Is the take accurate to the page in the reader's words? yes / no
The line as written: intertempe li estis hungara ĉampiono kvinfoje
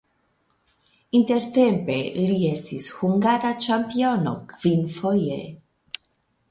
yes